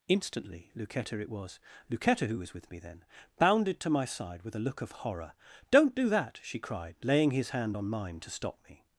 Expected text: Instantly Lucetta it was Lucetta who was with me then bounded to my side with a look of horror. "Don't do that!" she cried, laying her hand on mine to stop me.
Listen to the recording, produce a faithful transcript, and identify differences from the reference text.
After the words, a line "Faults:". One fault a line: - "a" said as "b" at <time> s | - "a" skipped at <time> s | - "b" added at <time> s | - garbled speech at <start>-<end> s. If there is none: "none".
Instantly Lucetta it was Lucetta who was with me then bounded to my side with a look of horror. "Don't do that!" she cried, laying his hand on mine to stop me.
Faults:
- "her" said as "his" at 7.3 s